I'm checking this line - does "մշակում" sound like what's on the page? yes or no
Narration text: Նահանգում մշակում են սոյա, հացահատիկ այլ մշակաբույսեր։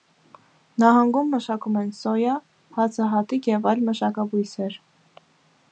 yes